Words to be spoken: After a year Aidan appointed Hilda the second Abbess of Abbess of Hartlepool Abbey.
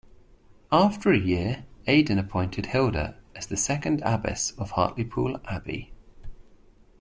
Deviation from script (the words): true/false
true